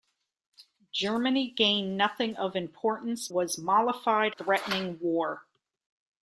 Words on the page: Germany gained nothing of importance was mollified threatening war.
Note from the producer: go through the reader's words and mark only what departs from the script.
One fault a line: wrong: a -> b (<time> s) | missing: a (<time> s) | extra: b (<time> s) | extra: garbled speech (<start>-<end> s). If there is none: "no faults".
no faults